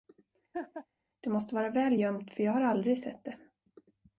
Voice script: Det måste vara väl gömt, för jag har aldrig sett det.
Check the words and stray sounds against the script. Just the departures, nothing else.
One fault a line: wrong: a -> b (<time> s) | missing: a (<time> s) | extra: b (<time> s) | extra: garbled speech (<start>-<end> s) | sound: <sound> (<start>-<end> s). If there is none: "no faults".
sound: laugh (0.5-0.9 s)